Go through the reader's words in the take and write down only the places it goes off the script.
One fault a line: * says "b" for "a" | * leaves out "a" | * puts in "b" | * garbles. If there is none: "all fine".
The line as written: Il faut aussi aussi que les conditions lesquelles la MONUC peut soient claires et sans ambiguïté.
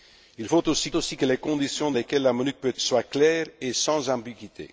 all fine